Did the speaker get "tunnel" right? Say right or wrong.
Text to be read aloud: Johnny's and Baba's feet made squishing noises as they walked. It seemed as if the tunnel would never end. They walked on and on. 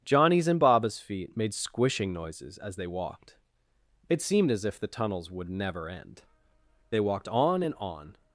wrong